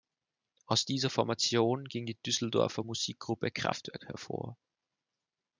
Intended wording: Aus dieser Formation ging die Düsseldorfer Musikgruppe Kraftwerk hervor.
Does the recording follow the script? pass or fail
pass